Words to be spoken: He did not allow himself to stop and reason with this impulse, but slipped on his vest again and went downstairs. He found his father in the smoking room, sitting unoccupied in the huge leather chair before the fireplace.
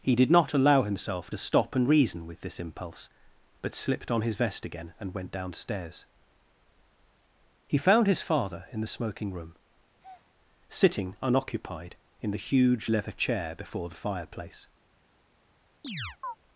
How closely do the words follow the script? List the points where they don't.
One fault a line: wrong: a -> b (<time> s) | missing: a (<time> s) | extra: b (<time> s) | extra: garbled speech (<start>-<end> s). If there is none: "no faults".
no faults